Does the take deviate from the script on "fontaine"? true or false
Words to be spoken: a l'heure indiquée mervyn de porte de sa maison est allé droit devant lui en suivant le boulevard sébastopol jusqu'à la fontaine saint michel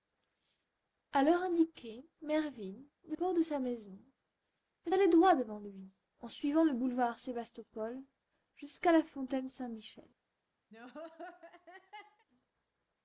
false